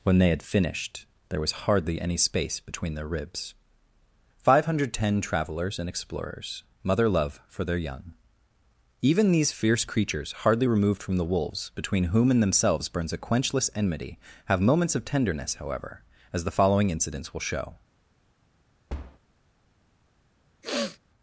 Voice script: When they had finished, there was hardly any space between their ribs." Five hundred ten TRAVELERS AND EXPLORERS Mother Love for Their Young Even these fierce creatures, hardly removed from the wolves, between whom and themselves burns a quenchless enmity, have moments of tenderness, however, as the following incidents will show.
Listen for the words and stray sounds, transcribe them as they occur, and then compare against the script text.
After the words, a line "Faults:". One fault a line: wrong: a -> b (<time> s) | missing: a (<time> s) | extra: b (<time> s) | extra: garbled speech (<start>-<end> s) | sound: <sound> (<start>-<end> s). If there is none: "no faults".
When they had finished, there was hardly any space between their ribs." Five hundred ten TRAVELERS AND EXPLORERS Mother Love for Their Young Even these fierce creatures, hardly removed from the wolves, between whom and themselves burns a quenchless enmity, have moments of tenderness, however, as the following incidents will show.
Faults:
sound: thud (18.9-19.2 s)
sound: sniff (20.6-21.0 s)